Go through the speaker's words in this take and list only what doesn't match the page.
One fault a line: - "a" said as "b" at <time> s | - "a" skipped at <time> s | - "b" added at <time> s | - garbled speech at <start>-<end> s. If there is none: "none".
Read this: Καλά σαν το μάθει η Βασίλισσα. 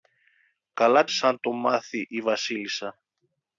none